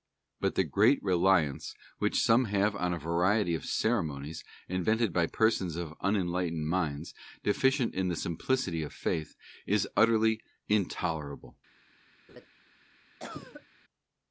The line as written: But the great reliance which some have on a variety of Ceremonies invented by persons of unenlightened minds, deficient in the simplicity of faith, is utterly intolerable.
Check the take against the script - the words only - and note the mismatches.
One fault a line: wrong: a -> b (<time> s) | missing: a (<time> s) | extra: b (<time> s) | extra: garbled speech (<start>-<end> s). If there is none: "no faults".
no faults